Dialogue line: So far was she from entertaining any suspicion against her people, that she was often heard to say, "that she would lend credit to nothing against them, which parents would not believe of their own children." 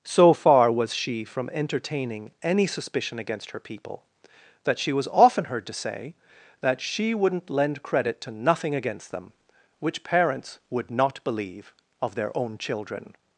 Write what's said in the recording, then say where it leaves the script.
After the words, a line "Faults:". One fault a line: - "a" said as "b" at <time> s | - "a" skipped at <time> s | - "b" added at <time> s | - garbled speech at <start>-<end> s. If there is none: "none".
So far was she from entertaining any suspicion against her people, that she was often heard to say, "that she wouldn't lend credit to nothing against them, which parents would not believe of their own children."
Faults:
- "would" said as "wouldn't" at 7.1 s